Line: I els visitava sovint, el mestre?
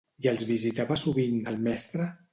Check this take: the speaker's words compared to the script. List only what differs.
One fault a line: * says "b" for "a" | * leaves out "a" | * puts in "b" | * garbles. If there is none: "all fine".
all fine